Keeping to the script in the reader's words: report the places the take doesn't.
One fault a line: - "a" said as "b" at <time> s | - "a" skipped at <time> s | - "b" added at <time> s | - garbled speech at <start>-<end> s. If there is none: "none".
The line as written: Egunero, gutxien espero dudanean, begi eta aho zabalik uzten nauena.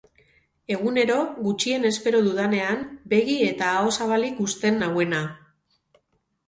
none